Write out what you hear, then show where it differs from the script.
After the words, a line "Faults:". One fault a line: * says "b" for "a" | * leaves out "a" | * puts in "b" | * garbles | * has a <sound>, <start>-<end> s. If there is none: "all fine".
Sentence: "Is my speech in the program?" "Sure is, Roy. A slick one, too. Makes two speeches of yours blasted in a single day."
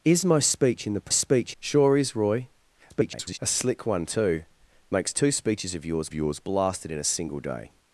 "Is my speech in the speech?" "Sure is, Roy. [garbled] A slick one, too. Makes two speeches of yours yours blasted in a single day."
Faults:
* says "speech" for "program"
* garbles
* puts in "yours"